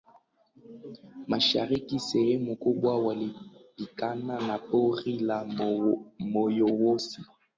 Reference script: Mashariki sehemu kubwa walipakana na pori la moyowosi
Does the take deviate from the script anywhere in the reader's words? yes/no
no